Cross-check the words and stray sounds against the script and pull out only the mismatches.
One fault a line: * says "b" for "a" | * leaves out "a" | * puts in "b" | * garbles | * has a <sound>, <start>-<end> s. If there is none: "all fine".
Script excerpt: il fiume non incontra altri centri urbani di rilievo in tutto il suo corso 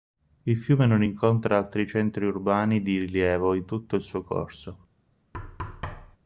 * has a thud, 5.3-6.2 s